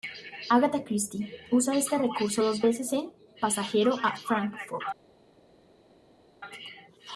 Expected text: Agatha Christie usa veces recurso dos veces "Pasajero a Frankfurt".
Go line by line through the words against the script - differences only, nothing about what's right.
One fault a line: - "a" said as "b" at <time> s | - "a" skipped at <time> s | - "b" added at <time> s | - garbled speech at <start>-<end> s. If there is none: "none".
- "veces" said as "este" at 1.8 s
- "en" added at 2.9 s